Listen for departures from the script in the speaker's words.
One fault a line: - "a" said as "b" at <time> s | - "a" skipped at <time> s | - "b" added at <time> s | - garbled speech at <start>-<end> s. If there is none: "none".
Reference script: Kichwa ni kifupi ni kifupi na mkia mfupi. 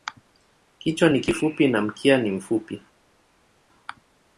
- "ni kifupi" skipped at 1.7 s
- "ni" added at 2.2 s